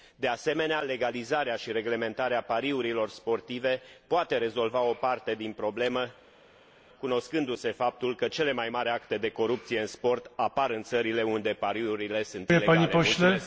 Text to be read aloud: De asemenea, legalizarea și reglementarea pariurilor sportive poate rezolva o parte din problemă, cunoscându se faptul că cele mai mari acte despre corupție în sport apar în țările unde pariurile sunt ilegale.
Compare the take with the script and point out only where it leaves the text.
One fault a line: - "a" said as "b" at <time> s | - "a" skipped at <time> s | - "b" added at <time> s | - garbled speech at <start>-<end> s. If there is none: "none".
- "despre" said as "de" at 9.2 s